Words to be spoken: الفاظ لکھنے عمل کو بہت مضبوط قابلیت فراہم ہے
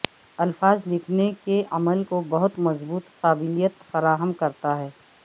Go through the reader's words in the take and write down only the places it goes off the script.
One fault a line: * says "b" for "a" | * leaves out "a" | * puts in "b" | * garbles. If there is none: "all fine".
* puts in "کے"
* puts in "کرتا"